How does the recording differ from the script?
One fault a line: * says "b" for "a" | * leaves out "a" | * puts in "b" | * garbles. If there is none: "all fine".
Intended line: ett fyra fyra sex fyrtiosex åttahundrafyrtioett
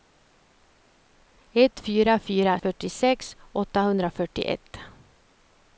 * leaves out "sex"